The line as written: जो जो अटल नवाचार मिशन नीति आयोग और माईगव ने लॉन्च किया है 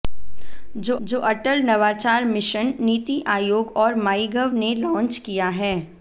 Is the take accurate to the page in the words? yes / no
yes